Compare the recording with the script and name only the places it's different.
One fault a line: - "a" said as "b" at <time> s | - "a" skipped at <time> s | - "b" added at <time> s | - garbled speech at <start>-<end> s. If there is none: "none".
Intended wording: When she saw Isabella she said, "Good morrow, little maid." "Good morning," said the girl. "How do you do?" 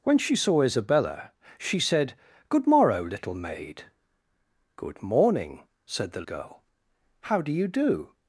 none